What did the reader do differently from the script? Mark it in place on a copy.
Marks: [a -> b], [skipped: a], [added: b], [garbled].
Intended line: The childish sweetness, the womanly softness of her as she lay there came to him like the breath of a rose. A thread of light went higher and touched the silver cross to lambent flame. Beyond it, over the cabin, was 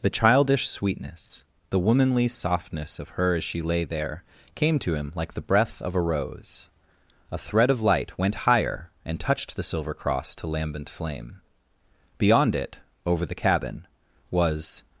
The childish sweetness, the womanly softness of her as she lay there came to him like the breath of a rose. A thread of light went higher and touched the silver cross to lambent flame. Beyond it, over the cabin, was